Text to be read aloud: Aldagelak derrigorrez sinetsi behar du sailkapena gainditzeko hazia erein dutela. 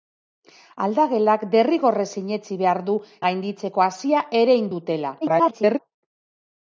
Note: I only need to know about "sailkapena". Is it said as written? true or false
false